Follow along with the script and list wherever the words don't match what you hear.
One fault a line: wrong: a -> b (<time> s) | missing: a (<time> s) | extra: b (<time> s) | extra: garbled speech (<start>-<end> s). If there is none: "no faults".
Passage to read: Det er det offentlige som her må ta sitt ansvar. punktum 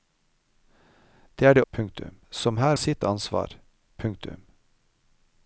wrong: offentlige -> punktum (1.7 s)
missing: må ta (2.8 s)